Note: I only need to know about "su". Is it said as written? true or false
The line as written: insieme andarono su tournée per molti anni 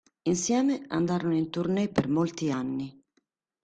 false